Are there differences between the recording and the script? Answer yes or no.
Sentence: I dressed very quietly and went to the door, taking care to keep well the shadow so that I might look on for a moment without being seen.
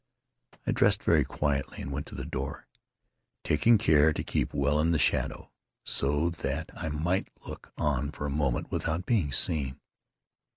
yes